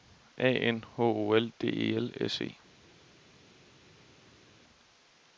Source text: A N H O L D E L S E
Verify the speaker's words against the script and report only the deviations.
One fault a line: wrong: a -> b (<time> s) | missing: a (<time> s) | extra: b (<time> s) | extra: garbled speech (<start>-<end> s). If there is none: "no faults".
no faults